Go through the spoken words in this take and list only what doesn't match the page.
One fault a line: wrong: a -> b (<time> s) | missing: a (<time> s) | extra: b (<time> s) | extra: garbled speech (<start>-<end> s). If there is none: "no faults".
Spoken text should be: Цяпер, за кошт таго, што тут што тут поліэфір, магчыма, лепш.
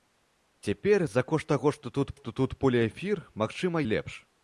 no faults